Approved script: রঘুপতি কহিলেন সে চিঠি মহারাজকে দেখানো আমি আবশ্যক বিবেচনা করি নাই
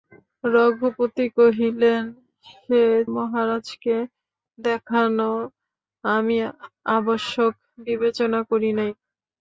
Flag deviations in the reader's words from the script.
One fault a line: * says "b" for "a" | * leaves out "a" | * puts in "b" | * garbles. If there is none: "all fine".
* leaves out "চিঠি"